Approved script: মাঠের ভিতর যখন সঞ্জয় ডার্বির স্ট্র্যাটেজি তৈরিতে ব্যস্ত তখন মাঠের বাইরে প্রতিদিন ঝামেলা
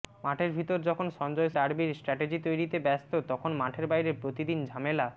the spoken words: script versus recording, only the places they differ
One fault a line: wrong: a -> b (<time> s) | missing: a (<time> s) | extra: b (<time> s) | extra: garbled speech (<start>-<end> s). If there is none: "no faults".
no faults